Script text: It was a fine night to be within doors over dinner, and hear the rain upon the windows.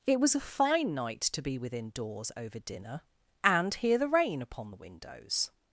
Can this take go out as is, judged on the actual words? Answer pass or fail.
pass